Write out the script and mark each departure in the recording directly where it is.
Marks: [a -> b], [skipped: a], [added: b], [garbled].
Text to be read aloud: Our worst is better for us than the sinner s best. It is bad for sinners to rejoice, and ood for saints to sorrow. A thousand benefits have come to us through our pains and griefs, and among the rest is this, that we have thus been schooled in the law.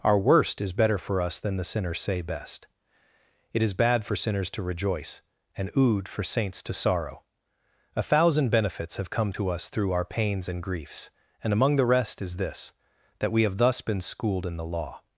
Our worst is better for us than the [sinner s -> sinners say] best. It is bad for sinners to rejoice, and ood for saints to sorrow. A thousand benefits have come to us through our pains and griefs, and among the rest is this, that we have thus been schooled in the law.